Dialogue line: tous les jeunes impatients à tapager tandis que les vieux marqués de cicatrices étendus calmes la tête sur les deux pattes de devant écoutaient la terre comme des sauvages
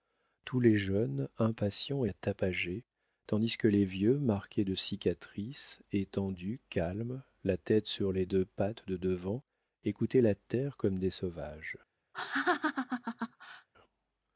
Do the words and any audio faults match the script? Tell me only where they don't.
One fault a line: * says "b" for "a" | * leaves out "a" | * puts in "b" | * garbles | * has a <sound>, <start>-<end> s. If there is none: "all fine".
* has a laugh, 12.1-13.7 s